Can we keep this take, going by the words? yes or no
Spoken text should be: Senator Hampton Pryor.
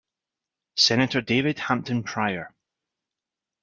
no